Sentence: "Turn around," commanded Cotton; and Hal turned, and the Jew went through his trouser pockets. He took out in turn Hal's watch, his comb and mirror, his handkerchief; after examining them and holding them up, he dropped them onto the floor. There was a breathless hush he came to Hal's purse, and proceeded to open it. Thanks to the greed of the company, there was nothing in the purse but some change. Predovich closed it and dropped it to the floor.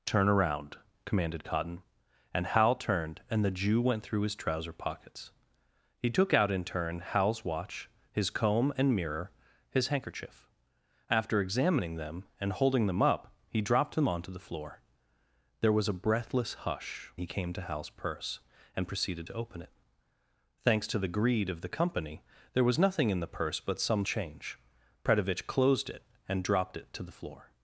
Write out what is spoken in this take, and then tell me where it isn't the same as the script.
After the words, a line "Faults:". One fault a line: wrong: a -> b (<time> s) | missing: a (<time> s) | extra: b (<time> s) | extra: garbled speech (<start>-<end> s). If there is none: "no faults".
"Turn around," commanded Cotton; and Hal turned, and the Jew went through his trouser pockets. He took out in turn Hal's watch, his comb and mirror, his handkerchief; after examining them and holding them up, he dropped them onto the floor. There was a breathless hush he came to Hal's purse, and proceeded to open it. Thanks to the greed of the company, there was nothing in the purse but some change. Predovich closed it and dropped it to the floor.
Faults:
no faults